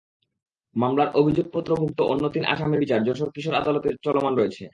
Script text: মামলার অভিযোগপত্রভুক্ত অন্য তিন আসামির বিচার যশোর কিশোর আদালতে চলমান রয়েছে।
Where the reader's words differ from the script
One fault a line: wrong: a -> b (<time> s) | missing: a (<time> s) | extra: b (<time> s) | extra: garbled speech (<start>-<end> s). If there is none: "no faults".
no faults